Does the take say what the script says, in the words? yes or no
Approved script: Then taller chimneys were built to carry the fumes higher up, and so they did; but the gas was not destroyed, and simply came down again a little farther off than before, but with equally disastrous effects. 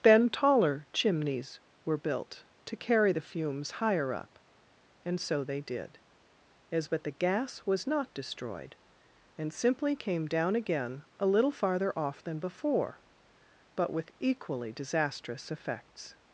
no